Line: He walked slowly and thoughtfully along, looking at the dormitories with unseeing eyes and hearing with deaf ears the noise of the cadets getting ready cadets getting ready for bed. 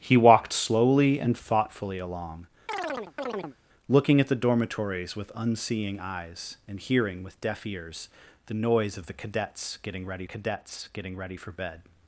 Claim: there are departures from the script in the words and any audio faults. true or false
true